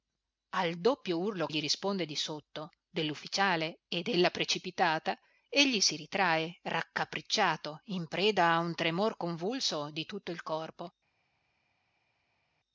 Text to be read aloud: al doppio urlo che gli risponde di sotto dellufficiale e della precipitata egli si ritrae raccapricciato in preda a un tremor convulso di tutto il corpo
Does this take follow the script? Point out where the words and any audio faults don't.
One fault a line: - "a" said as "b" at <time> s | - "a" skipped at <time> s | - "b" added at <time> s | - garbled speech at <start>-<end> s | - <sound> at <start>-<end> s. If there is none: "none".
- "che" skipped at 1.5 s